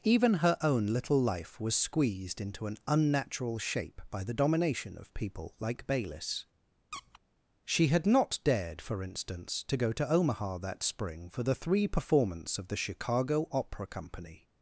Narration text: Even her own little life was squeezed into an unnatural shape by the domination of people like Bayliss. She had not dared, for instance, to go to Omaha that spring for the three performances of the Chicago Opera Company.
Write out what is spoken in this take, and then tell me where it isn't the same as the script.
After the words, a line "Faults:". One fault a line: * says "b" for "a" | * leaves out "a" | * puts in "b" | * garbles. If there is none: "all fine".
Even her own little life was squeezed into an unnatural shape by the domination of people like Bayliss. She had not dared, for instance, to go to Omaha that spring for the three performance of the Chicago Opera Company.
Faults:
* says "performance" for "performances"